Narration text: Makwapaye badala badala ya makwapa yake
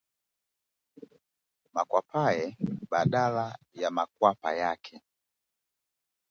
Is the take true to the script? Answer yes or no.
no